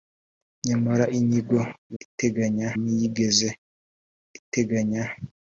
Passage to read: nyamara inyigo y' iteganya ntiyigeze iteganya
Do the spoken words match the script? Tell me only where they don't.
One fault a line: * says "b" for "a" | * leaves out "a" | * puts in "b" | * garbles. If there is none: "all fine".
all fine